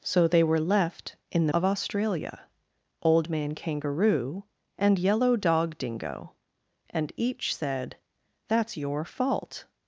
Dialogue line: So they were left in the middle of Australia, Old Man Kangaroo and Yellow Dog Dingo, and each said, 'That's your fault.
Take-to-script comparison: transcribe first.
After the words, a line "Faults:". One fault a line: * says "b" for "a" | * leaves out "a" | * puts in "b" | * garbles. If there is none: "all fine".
So they were left in the of Australia, Old Man Kangaroo and Yellow Dog Dingo, and each said, 'That's your fault.
Faults:
* leaves out "middle"